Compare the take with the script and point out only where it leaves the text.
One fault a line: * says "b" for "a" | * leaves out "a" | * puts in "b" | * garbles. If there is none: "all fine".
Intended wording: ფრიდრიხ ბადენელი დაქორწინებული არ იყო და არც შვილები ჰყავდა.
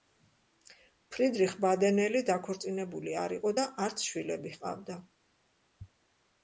all fine